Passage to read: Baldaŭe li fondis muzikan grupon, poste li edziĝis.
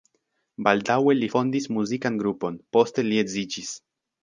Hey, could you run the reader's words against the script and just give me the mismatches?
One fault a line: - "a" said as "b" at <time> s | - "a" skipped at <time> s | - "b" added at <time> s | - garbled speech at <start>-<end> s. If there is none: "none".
none